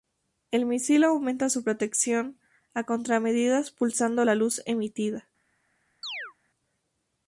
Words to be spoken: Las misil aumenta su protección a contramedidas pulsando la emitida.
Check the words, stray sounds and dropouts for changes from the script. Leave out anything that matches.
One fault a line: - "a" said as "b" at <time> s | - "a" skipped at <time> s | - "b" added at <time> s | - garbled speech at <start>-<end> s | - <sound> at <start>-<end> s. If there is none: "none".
- "Las" said as "El" at 0.5 s
- "luz" added at 4.3 s
- chirp at 6.0-6.3 s